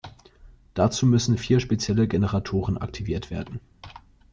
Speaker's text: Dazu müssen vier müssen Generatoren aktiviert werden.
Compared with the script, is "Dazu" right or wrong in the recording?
right